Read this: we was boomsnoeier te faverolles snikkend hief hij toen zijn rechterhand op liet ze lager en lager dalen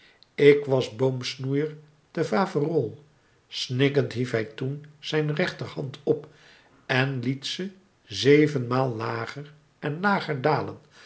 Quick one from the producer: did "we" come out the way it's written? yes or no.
no